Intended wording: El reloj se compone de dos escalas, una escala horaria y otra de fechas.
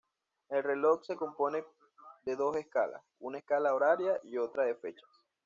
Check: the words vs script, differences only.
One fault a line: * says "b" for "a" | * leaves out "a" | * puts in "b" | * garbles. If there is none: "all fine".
all fine